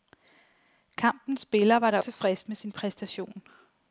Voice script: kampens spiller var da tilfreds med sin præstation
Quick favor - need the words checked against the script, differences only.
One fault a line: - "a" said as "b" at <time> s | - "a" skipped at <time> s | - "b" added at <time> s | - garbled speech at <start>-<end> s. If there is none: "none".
none